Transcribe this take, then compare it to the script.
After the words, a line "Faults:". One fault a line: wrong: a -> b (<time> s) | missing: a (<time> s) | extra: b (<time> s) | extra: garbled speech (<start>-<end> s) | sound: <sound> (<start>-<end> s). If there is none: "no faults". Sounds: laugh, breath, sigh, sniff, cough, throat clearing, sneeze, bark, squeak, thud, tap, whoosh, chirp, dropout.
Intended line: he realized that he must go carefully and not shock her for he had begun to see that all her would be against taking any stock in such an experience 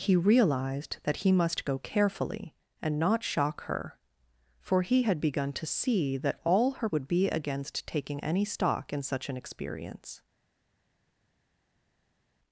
he realized that he must go carefully and not shock her for he had begun to see that all her would be against taking any stock in such an experience
Faults:
no faults